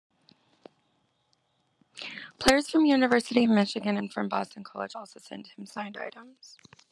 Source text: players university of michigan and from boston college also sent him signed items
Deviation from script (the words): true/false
true